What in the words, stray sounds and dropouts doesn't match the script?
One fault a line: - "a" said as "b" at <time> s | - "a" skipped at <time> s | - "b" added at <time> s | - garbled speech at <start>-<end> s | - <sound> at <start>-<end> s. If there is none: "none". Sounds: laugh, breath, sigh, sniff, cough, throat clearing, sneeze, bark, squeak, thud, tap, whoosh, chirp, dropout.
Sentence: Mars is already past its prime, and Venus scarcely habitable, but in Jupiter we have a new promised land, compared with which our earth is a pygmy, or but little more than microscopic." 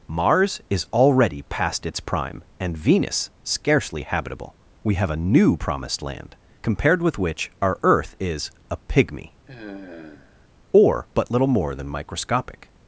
- "but in Jupiter" skipped at 4.5 s
- sigh at 9.5-10.5 s